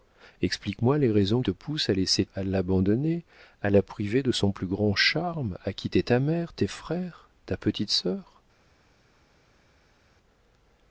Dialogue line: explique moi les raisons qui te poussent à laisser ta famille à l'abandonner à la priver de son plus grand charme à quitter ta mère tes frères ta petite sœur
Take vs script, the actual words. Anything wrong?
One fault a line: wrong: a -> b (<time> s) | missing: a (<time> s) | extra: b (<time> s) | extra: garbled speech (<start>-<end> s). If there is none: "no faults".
missing: qui (1.4 s)
missing: ta famille (2.3 s)